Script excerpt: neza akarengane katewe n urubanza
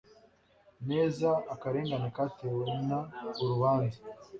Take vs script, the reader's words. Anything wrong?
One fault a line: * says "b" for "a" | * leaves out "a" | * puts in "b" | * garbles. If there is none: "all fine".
all fine